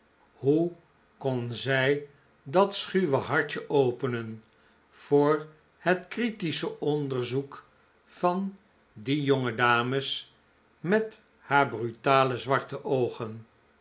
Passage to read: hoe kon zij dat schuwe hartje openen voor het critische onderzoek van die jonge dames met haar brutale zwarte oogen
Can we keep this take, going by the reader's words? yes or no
yes